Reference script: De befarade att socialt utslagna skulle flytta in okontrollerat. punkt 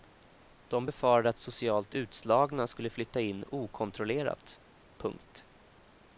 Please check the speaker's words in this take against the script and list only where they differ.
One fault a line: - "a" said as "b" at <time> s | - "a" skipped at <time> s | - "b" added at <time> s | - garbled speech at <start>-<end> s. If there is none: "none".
none